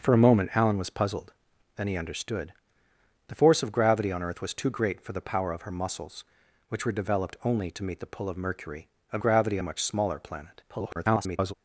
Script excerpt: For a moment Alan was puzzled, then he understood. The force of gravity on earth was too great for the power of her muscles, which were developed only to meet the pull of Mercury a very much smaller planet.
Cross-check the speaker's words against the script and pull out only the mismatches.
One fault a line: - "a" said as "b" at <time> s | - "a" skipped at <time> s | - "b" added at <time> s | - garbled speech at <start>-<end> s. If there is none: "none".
- "very" said as "gravity" at 9.2 s
- garbled speech at 10.7-11.5 s